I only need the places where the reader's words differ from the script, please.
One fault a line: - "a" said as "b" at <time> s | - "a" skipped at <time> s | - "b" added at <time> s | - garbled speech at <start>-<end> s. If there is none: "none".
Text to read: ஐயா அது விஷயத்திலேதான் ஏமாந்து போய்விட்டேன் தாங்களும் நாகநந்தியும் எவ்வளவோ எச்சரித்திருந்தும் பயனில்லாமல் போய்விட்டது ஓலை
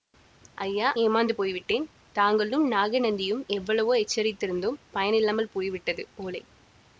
- "அது விஷயத்திலேதான்" skipped at 0.9 s